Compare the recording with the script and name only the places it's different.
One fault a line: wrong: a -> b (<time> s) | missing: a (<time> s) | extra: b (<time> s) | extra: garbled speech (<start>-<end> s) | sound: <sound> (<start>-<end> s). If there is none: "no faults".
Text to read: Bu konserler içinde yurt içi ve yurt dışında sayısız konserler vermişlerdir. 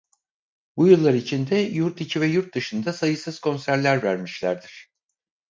wrong: konserler -> yıllar (0.9 s)